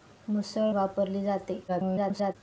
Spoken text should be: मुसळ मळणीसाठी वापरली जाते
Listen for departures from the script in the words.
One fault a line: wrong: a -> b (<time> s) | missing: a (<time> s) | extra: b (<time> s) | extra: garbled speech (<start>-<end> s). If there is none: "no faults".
missing: मळणीसाठी (0.7 s)
extra: garbled speech (1.7-2.4 s)